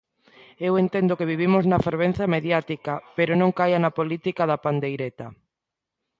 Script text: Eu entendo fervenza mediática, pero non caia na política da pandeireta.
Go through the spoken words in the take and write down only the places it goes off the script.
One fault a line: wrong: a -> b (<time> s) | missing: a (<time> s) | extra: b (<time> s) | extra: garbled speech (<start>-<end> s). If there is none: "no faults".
extra: que vivimos na (1.2 s)